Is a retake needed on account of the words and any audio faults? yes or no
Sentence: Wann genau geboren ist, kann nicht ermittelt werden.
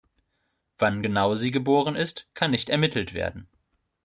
yes